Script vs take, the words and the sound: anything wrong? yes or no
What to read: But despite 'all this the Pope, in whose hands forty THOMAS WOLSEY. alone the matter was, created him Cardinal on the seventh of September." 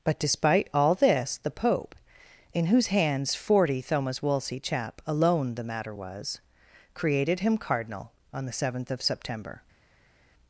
yes